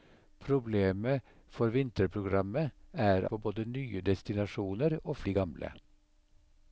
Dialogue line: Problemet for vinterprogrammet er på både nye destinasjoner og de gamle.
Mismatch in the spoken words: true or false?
false